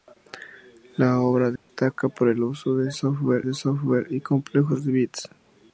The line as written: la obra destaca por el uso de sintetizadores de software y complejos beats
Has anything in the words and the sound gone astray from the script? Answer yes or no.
yes